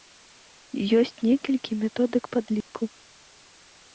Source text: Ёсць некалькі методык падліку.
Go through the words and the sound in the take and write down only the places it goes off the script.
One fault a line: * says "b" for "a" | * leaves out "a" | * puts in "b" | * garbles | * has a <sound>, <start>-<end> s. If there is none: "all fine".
* has a dropout, 2.6-2.7 s